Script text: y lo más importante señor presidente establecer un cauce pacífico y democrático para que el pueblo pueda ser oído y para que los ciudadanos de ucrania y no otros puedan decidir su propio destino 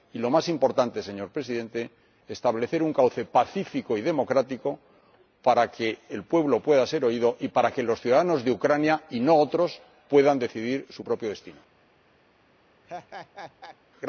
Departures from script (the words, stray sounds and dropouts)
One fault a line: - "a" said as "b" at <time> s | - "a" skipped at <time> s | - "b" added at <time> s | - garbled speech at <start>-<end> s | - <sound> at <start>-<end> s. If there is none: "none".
- laugh at 12.8-13.8 s